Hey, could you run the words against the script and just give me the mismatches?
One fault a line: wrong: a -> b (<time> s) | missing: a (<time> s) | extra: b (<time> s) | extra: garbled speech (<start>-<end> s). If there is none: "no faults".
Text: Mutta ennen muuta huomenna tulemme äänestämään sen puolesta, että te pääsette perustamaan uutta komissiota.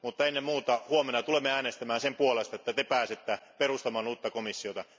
no faults